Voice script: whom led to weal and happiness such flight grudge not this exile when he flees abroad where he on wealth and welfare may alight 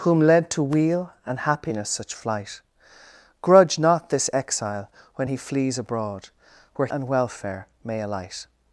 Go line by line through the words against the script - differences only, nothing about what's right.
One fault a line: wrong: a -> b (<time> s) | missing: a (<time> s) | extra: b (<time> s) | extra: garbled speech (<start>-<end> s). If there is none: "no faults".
missing: he on wealth (6.9 s)